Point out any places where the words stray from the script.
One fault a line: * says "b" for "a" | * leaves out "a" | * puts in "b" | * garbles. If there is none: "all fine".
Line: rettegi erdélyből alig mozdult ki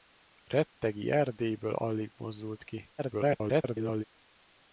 * garbles